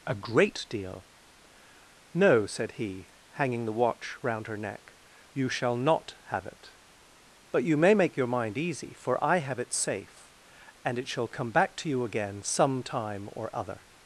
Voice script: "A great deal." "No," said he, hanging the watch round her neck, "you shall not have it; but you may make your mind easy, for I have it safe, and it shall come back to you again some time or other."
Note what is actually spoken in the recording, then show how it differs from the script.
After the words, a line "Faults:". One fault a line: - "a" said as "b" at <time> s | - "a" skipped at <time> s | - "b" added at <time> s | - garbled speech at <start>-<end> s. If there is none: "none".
"A great deal." "No," said he, hanging the watch round her neck, "you shall not have it; but you may make your mind easy, for I have it safe, and it shall come back to you again some time or other."
Faults:
none